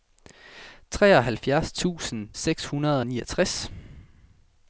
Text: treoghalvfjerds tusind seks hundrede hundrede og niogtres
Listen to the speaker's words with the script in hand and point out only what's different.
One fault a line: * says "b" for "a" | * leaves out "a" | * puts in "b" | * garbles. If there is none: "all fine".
* leaves out "hundrede"